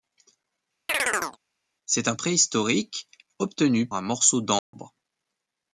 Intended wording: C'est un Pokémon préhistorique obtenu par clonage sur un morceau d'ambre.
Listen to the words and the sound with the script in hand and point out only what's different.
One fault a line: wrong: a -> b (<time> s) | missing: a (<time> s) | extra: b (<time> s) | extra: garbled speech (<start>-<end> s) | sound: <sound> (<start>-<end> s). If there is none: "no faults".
sound: chirp (0.9-1.4 s)
missing: Pokémon (2.1 s)
missing: par clonage sur (3.9 s)
sound: dropout (4.6-4.7 s)